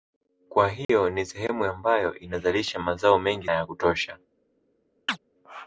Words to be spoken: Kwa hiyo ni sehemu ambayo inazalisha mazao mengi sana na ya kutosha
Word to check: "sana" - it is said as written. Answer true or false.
false